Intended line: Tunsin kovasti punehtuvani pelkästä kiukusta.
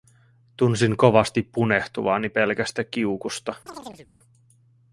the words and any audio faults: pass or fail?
fail